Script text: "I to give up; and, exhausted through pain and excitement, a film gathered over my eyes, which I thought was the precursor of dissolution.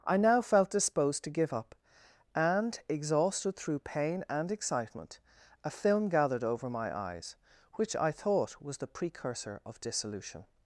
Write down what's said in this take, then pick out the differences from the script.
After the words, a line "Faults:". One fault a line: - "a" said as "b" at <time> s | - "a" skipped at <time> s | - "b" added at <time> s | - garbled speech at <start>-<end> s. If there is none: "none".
"I now felt disposed to give up; and, exhausted through pain and excitement, a film gathered over my eyes, which I thought was the precursor of dissolution.
Faults:
- "now felt disposed" added at 0.2 s